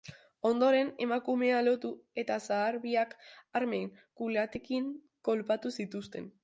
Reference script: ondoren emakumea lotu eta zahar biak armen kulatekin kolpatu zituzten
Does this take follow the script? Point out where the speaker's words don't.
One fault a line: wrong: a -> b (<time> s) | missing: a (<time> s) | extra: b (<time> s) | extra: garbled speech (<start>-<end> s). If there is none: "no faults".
no faults